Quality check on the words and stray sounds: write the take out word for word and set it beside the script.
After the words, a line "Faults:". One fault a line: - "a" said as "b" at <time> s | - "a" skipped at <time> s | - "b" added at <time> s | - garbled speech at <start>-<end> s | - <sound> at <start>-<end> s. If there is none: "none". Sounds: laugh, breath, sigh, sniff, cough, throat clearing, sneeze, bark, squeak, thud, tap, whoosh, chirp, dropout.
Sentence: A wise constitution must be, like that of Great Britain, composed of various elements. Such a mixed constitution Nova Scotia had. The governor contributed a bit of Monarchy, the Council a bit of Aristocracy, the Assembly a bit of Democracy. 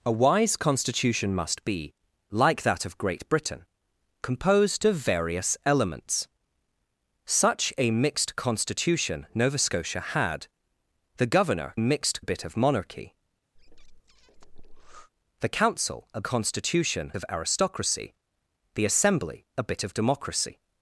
A wise constitution must be, like that of Great Britain, composed of various elements. Such a mixed constitution Nova Scotia had. The governor mixed a bit of Monarchy, the Council a constitution of Aristocracy, the Assembly a bit of Democracy.
Faults:
- "contributed" said as "mixed" at 11.8 s
- breath at 13.5-15.1 s
- "bit" said as "constitution" at 16.2 s